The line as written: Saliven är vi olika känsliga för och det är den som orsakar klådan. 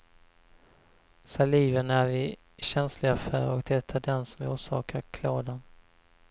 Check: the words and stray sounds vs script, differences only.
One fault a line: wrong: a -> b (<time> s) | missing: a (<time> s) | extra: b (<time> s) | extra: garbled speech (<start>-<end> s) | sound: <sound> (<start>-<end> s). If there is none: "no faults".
missing: olika (2.4 s)